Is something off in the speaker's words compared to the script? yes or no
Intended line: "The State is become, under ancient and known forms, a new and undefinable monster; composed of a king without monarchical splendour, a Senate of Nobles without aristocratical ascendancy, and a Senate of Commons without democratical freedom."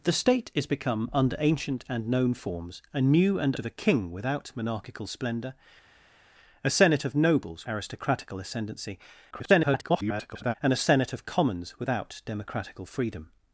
yes